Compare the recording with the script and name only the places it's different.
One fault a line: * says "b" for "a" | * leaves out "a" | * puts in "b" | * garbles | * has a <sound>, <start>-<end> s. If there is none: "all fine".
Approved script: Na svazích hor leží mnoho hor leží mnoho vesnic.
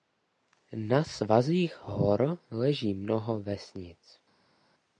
* leaves out "hor leží mnoho"